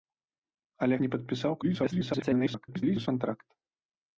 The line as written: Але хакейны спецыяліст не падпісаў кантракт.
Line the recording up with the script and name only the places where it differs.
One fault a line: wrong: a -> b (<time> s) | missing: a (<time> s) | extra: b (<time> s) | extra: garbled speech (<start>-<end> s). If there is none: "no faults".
missing: хакейны спецыяліст (0.9 s)
extra: garbled speech (1.6-3.1 s)